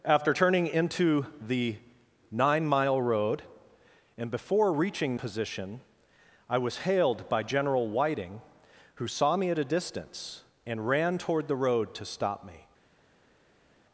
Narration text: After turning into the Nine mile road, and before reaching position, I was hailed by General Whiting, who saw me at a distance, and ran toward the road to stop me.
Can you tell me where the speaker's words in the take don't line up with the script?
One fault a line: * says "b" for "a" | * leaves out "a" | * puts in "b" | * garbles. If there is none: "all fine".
all fine